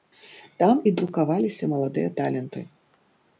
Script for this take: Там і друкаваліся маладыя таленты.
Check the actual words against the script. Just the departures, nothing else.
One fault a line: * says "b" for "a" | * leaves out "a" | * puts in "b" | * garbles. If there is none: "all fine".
all fine